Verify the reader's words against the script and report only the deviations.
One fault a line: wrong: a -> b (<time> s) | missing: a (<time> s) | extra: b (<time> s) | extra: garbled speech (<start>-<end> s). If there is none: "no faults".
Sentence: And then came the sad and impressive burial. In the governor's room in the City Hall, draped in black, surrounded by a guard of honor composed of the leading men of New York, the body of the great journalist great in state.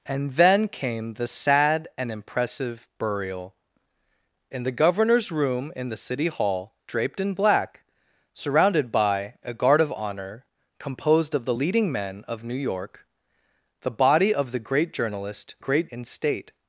no faults